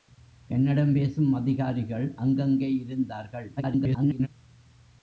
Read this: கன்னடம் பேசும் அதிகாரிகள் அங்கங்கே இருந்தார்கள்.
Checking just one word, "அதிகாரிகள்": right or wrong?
right